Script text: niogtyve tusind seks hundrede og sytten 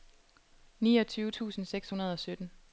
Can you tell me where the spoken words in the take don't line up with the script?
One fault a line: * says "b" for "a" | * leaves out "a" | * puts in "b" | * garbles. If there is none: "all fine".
all fine